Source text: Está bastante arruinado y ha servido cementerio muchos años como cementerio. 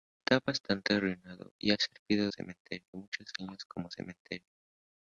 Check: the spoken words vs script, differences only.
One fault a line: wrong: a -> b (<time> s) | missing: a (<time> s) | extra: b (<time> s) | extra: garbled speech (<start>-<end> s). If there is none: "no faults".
no faults